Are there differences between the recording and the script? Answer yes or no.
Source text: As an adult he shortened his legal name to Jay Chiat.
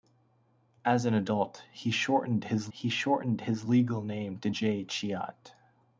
yes